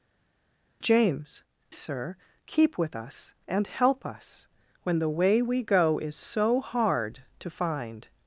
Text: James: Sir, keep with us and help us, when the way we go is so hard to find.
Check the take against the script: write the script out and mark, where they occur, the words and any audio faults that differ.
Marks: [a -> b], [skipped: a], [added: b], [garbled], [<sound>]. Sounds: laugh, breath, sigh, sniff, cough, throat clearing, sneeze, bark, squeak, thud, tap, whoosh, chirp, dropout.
James: Sir, keep with us and help us, when the way we go is so hard to find.